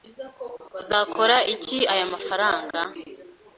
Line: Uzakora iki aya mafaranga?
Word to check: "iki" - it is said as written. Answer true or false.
true